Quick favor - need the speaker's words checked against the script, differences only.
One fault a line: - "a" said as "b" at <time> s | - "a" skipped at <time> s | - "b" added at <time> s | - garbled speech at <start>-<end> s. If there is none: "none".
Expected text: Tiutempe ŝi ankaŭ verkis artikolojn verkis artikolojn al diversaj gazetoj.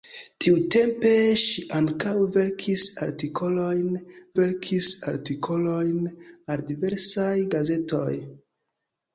none